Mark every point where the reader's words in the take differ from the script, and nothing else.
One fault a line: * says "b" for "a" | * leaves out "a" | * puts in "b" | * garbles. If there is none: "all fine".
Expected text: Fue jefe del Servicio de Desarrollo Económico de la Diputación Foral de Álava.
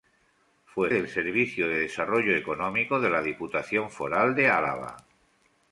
* leaves out "jefe"